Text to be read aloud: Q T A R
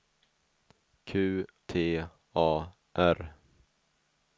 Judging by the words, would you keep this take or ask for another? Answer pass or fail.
pass